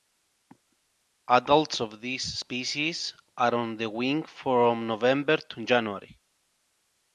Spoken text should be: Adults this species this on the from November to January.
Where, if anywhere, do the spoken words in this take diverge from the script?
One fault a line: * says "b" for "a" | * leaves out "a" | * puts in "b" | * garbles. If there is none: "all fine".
* puts in "of"
* says "are" for "this"
* puts in "wing"